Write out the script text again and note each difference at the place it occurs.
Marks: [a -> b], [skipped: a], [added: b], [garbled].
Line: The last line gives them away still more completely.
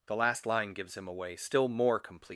The last line gives [them -> him] away still more completely.